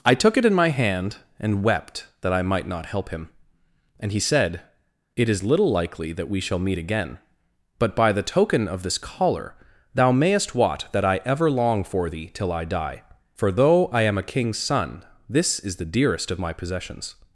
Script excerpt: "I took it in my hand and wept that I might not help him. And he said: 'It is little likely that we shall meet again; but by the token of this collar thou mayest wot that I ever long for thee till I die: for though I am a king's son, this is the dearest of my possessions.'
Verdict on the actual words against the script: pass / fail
pass